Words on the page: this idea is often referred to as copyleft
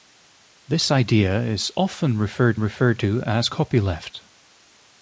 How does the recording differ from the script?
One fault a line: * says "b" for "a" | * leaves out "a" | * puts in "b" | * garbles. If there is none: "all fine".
* puts in "referred"